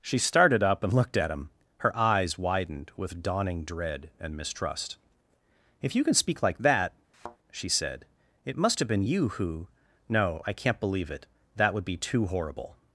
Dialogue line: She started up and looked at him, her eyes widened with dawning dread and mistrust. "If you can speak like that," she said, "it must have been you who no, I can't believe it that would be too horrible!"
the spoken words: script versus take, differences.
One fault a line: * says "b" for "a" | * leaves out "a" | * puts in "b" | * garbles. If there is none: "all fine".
all fine